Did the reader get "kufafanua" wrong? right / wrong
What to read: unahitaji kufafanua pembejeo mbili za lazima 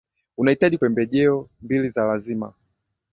wrong